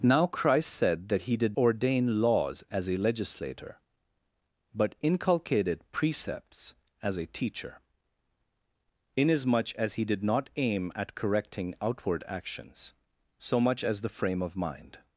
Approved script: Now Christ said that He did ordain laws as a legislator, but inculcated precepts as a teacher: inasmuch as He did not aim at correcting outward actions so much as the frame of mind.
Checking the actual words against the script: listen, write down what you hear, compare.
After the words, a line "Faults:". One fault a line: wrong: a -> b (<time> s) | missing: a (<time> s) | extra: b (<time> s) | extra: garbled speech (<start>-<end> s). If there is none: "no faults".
Now Christ said that He did ordain laws as a legislator, but inculcated precepts as a teacher: inasmuch as He did not aim at correcting outward actions so much as the frame of mind.
Faults:
no faults